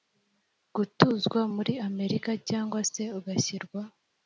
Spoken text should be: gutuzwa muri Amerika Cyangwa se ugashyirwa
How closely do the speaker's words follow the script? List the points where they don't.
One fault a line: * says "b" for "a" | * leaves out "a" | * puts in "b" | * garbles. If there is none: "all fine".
all fine